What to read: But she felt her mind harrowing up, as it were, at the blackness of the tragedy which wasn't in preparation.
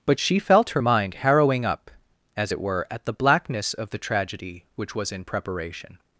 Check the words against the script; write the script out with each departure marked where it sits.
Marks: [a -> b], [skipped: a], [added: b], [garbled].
But she felt her mind harrowing up, as it were, at the blackness of the tragedy which [wasn't -> was] in preparation.